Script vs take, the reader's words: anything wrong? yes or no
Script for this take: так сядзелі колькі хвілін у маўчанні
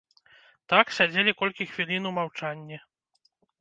no